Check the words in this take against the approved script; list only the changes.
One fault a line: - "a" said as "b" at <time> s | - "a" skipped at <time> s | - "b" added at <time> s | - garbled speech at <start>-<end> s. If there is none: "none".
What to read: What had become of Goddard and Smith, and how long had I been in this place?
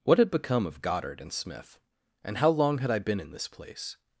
none